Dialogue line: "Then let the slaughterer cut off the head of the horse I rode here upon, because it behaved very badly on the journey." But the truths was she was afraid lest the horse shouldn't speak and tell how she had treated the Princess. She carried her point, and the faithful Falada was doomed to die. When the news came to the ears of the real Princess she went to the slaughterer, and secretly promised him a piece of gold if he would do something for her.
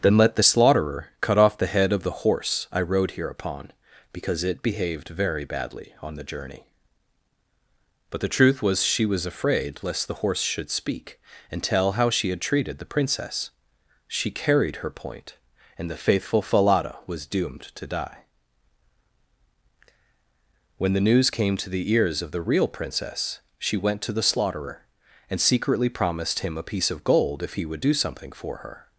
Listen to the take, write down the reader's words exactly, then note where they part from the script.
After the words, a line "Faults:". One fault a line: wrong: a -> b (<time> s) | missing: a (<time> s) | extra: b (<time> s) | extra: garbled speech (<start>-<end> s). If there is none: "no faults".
"Then let the slaughterer cut off the head of the horse I rode here upon, because it behaved very badly on the journey." But the truth was she was afraid lest the horse should speak and tell how she had treated the Princess. She carried her point, and the faithful Falada was doomed to die. When the news came to the ears of the real Princess she went to the slaughterer, and secretly promised him a piece of gold if he would do something for her.
Faults:
wrong: truths -> truth (8.3 s)
wrong: shouldn't -> should (10.4 s)